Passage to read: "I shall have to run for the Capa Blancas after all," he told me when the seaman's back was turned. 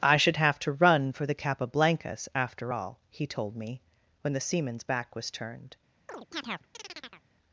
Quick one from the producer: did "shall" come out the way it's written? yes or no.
no